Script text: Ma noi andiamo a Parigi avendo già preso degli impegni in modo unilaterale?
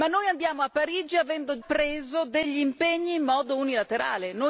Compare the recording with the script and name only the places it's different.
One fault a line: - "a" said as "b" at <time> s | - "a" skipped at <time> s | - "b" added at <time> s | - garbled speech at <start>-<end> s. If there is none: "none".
- "già" skipped at 1.6 s